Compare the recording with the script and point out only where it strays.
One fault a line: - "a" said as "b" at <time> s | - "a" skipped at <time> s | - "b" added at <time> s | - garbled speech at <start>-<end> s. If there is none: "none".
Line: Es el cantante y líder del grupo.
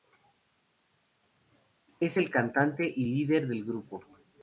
none